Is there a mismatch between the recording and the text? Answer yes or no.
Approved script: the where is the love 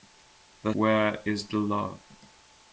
no